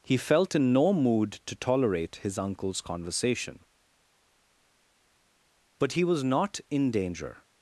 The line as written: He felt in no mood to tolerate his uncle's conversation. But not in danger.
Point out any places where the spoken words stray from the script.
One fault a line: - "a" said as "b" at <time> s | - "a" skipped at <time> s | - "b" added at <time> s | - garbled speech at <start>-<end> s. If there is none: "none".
- "he was" added at 5.9 s